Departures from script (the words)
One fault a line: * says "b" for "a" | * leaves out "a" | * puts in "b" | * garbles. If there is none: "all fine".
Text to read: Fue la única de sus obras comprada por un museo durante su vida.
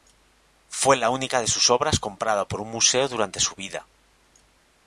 all fine